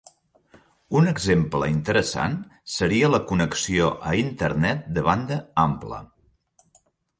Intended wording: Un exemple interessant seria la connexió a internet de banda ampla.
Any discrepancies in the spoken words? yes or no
no